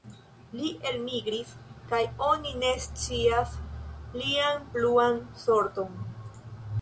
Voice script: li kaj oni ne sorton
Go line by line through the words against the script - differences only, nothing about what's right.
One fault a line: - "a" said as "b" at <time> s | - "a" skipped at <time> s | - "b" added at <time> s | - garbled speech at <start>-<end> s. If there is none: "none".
- "elmigris" added at 0.9 s
- "scias lian pluan" added at 2.9 s